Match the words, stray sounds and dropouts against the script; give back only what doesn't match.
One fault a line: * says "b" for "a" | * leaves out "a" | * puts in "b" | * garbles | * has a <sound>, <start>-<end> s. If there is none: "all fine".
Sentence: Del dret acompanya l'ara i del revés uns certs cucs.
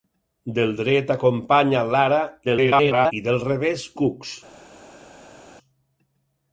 * garbles
* leaves out "uns certs"